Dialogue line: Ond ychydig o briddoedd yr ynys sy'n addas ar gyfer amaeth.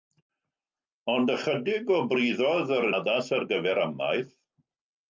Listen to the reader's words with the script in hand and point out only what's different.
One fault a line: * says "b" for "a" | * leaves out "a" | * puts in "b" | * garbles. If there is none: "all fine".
* leaves out "ynys sy'n"